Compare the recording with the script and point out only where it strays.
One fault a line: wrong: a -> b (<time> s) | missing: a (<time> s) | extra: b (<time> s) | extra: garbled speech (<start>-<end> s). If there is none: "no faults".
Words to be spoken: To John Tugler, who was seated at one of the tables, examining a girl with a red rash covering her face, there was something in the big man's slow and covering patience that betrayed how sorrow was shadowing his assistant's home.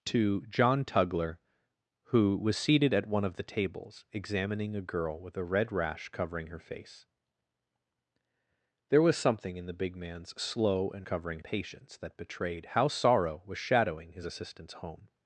no faults